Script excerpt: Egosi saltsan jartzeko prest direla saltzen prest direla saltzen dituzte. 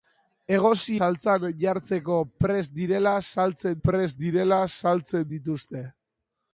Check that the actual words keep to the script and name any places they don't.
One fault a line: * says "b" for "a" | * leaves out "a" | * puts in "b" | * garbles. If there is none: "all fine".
all fine